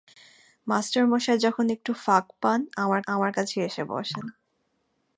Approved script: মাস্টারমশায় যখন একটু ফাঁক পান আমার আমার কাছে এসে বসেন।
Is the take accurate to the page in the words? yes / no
yes